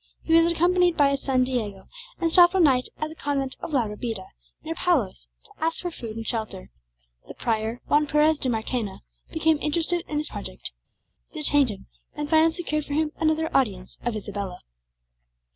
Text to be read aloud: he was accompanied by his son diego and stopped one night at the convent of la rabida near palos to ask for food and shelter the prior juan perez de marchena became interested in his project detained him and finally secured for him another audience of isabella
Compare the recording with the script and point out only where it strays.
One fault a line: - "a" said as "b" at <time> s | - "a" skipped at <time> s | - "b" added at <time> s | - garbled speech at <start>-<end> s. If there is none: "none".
none